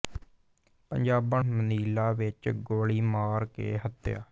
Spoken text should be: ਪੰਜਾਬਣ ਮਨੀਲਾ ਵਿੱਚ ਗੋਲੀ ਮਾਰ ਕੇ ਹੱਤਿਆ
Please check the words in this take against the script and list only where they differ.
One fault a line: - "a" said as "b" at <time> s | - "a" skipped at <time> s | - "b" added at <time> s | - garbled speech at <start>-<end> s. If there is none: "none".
none